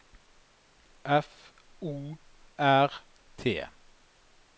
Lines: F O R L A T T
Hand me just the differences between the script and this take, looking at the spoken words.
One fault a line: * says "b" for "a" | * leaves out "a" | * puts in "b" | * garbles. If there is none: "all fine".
* leaves out "L A T"